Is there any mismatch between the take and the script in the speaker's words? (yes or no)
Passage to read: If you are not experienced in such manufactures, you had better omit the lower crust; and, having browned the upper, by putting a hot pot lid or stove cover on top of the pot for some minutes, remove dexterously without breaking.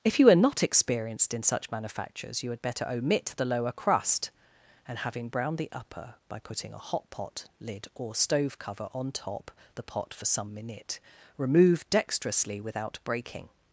yes